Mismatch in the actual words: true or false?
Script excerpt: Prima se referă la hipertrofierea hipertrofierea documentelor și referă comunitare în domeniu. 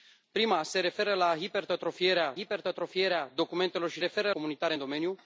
false